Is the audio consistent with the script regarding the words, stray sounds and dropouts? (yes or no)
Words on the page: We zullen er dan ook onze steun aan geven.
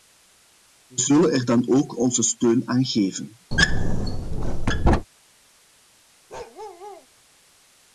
no